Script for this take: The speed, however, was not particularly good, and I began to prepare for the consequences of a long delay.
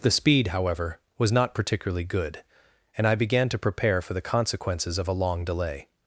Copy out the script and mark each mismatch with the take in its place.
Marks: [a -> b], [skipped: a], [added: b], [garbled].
The speed, however, was not particularly good, and I began to prepare for the consequences of a long delay.